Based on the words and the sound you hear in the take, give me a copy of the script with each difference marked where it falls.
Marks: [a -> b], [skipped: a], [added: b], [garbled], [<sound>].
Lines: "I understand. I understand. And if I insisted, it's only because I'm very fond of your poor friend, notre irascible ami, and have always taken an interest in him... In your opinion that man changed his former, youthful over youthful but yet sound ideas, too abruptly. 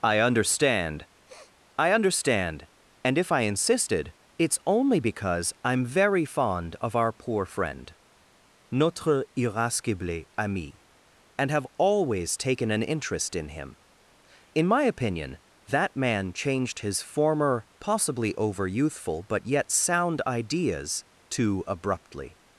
"I understand. [sniff] I understand. And if I insisted, it's only because I'm very fond of [your -> our] poor friend, notre irascible ami, and have always taken an interest in him... In [your -> my] opinion that man changed his former, [youthful -> possibly] over youthful but yet sound ideas, too abruptly.